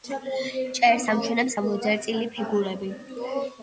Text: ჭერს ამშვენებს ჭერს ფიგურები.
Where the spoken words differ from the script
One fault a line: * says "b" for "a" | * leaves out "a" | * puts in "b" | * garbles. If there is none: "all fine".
* says "გამოძერწილი" for "ჭერს"